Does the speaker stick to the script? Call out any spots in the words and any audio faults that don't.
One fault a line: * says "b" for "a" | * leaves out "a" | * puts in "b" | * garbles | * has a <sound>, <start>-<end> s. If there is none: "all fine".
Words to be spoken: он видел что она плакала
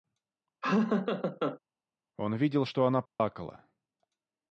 * has a laugh, 0.6-1.6 s
* has a dropout, 3.1-3.2 s